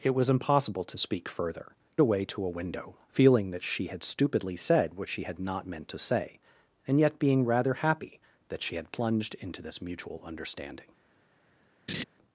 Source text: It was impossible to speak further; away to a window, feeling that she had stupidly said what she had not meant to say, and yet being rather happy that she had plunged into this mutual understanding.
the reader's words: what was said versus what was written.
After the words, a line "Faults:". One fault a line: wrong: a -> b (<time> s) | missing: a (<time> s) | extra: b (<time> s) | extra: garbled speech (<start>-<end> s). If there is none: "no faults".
It was impossible to speak further; away to a window, feeling that she had stupidly said what she had not meant to say, and yet being rather happy that she had plunged into this mutual understanding.
Faults:
no faults